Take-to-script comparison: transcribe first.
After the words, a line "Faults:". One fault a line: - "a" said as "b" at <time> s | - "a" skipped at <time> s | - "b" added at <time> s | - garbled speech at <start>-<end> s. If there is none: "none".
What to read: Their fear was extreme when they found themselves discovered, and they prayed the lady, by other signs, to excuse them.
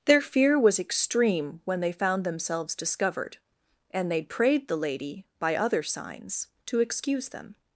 Their fear was extreme when they found themselves discovered, and they prayed the lady, by other signs, to excuse them.
Faults:
none